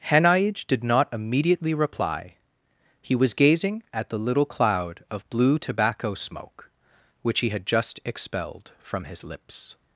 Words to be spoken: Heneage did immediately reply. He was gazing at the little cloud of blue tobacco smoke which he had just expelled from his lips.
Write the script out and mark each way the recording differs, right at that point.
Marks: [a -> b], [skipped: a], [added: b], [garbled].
Heneage did [added: not] immediately reply. He was gazing at the little cloud of blue tobacco smoke which he had just expelled from his lips.